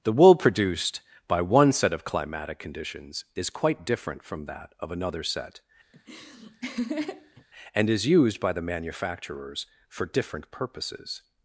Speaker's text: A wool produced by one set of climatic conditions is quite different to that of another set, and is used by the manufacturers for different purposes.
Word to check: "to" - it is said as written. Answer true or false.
false